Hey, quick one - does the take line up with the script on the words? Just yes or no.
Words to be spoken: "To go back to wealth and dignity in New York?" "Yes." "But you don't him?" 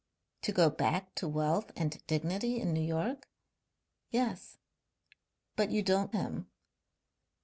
yes